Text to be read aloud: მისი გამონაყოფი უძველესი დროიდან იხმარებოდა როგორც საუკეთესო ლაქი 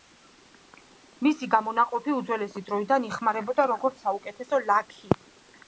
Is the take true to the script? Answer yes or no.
yes